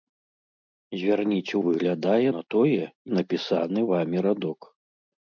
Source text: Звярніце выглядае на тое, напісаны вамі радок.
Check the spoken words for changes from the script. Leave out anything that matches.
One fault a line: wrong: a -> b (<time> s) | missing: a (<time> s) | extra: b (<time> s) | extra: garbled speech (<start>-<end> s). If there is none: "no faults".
no faults